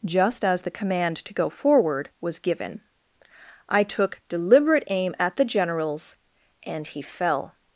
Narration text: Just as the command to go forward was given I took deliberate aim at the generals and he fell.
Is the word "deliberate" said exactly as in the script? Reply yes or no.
yes